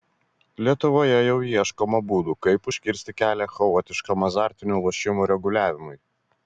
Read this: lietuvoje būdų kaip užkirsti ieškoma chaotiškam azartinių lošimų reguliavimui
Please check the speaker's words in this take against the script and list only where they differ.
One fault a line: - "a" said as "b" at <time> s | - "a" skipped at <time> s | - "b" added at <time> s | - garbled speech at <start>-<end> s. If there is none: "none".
- "jau ieškoma" added at 1.2 s
- "ieškoma" said as "kelią" at 3.2 s